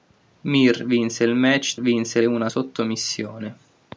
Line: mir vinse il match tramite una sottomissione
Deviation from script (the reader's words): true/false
true